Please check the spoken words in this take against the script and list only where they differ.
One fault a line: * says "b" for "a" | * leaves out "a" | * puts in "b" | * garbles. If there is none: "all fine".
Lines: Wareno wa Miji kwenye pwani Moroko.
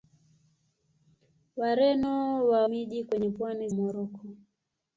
all fine